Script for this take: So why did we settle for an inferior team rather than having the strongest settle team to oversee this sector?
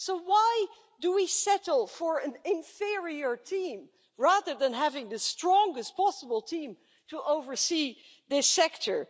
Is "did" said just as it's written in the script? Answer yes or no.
no